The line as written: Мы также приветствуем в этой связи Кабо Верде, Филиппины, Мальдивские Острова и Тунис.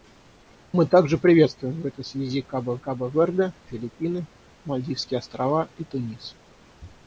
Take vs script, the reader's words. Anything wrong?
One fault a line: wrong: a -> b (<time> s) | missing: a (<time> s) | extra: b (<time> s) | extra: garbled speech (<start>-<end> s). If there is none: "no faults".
extra: Кабо (2.8 s)